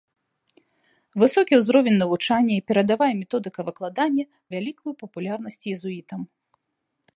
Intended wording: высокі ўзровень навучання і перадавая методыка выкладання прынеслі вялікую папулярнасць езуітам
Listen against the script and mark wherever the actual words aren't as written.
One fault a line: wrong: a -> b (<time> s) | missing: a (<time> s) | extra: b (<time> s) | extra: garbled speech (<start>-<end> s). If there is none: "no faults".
missing: прынеслі (4.2 s)